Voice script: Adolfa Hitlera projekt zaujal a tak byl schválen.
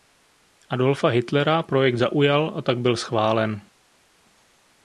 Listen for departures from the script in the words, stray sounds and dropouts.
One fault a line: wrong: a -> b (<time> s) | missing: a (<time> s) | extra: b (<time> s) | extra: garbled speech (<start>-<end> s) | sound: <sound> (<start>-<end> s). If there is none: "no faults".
no faults